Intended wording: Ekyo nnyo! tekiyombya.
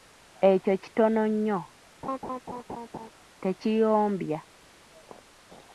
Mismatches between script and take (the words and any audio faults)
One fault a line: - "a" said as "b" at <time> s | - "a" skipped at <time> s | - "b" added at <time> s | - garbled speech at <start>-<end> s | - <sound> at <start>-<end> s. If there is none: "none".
- "kitono" added at 0.8 s
- laugh at 2.0-3.1 s